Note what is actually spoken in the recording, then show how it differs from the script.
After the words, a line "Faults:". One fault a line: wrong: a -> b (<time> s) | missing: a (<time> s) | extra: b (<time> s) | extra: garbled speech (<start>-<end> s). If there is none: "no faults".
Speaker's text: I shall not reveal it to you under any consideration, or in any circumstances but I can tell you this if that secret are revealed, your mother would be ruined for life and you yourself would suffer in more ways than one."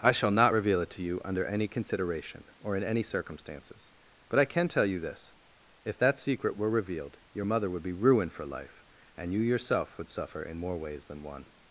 I shall not reveal it to you under any consideration, or in any circumstances but I can tell you this if that secret were revealed, your mother would be ruined for life and you yourself would suffer in more ways than one."
Faults:
wrong: are -> were (6.5 s)